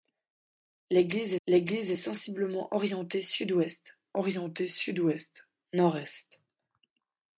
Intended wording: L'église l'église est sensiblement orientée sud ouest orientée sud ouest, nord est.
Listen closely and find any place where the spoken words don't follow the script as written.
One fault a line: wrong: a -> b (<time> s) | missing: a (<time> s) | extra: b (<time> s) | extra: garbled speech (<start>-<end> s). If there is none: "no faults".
no faults